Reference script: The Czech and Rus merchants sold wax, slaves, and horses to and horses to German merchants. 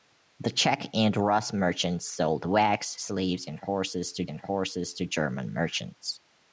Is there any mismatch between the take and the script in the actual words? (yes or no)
no